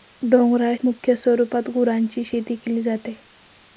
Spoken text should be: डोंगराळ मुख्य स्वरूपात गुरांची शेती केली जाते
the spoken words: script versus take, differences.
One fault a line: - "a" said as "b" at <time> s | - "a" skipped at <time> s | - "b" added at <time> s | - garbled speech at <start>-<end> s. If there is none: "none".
none